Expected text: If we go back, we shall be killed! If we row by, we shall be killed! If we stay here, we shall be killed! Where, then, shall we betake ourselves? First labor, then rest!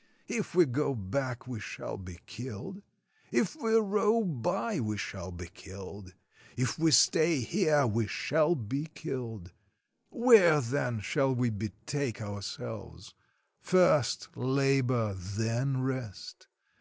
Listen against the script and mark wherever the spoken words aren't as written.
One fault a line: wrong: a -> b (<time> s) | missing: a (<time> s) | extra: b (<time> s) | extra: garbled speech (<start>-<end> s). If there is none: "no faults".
no faults